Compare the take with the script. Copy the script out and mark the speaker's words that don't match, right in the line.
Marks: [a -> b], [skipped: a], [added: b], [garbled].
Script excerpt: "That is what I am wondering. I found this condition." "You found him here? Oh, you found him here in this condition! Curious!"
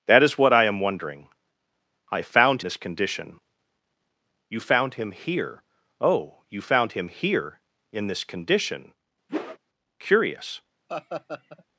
"That is what I am wondering. I found this condition." "You found him here? Oh, you found him here in this condition! Curious!"